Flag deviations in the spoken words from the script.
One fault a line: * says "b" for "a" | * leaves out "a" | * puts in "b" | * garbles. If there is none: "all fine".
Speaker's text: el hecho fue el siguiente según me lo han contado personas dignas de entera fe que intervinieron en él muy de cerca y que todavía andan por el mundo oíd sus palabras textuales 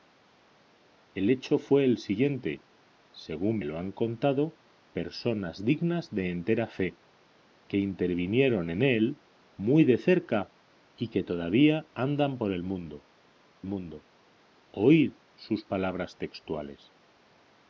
* leaves out "me"
* puts in "mundo"